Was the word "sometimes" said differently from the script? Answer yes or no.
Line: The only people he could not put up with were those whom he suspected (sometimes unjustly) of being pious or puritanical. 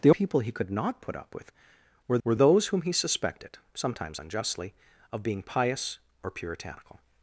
no